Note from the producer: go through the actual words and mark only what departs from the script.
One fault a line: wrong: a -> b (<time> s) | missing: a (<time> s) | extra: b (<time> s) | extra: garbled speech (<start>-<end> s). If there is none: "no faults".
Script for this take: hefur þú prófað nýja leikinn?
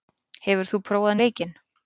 missing: nýja (1.2 s)